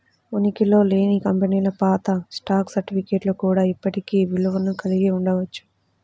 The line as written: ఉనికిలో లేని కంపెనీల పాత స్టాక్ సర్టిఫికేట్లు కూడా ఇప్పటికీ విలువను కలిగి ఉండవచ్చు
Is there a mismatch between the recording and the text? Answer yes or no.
no